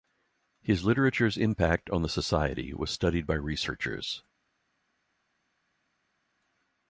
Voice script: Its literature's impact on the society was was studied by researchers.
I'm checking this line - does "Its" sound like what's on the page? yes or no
no